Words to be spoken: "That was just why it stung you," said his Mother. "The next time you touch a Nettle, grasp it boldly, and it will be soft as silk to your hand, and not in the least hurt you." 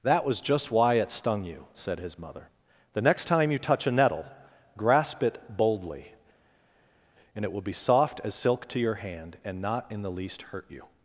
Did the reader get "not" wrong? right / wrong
right